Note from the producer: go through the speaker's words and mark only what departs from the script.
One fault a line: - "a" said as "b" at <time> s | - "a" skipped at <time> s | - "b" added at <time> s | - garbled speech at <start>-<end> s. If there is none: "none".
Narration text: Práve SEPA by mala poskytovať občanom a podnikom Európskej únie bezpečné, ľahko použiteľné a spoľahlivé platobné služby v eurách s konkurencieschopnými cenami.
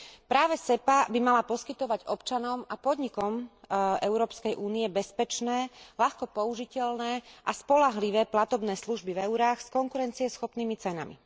none